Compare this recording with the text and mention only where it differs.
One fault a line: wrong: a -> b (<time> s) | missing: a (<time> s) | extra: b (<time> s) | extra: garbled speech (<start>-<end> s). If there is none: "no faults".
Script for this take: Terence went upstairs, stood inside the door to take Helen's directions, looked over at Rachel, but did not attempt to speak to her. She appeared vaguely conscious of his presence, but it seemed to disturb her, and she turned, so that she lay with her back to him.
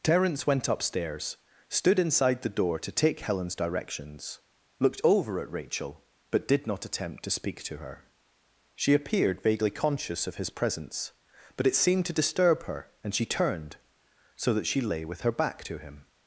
no faults